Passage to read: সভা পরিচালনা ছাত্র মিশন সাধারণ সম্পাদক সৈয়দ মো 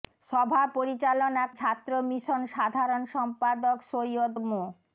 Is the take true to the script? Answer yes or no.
yes